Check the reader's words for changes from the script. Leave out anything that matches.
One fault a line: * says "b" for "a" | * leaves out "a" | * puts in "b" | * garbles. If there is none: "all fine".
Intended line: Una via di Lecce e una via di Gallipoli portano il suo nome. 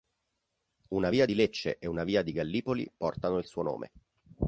all fine